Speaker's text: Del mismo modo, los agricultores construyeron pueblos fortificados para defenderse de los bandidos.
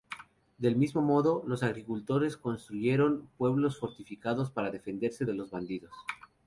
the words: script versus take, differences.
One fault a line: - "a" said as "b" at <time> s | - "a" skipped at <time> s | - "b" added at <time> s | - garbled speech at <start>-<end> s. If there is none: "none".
none